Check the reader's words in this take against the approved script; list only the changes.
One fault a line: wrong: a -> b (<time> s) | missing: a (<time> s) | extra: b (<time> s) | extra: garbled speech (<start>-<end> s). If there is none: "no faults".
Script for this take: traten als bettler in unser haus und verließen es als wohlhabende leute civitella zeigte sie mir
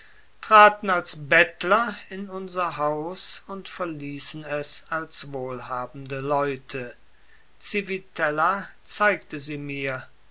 no faults